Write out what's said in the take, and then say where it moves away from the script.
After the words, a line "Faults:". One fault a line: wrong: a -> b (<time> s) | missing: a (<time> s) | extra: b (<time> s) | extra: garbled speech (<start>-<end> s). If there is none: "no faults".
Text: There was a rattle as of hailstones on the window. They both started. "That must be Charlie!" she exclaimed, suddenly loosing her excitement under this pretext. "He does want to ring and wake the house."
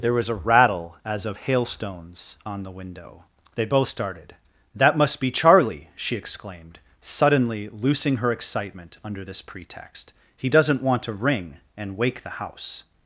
There was a rattle as of hailstones on the window. They both started. "That must be Charlie!" she exclaimed, suddenly loosing her excitement under this pretext. "He doesn't want to ring and wake the house."
Faults:
wrong: does -> doesn't (10.5 s)